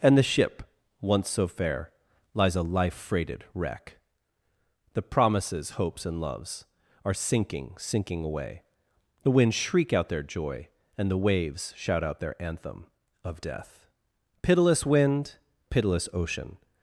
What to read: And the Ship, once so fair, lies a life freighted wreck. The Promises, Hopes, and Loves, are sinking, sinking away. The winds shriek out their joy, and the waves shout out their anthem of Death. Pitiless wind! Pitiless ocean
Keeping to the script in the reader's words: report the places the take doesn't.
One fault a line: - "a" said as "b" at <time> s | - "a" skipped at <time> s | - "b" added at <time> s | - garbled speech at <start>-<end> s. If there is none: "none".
none